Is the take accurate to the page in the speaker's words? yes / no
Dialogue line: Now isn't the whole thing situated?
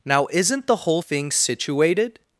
yes